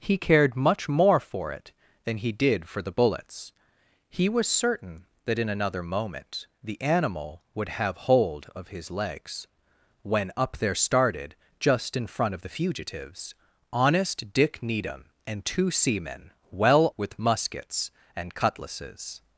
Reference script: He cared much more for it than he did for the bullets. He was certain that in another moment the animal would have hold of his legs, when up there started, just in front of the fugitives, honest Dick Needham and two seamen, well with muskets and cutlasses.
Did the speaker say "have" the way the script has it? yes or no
yes